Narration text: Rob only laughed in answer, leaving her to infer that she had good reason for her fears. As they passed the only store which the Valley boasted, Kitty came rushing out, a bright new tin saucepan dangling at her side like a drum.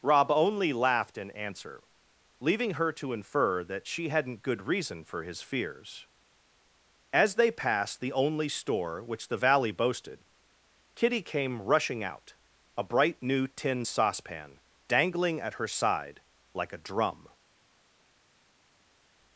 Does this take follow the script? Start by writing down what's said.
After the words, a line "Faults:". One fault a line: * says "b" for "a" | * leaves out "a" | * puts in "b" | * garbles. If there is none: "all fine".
Rob only laughed in answer, leaving her to infer that she hadn't good reason for his fears. As they passed the only store which the Valley boasted, Kitty came rushing out, a bright new tin saucepan dangling at her side like a drum.
Faults:
* says "hadn't" for "had"
* says "his" for "her"